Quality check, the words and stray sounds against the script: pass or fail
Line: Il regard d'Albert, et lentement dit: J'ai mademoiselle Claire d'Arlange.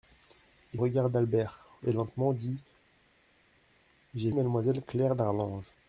pass